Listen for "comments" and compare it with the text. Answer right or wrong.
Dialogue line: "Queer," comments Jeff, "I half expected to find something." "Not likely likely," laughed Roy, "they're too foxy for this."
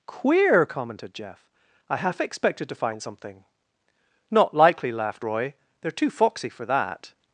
wrong